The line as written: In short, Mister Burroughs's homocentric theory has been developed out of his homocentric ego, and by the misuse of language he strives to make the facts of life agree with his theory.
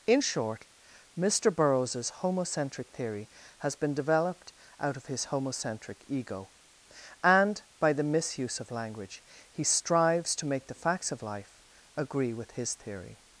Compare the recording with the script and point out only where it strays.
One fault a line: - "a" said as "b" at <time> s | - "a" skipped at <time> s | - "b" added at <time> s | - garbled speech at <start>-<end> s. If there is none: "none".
none